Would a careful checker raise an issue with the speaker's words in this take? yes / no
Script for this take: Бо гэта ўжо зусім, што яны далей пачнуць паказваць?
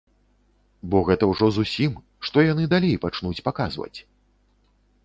no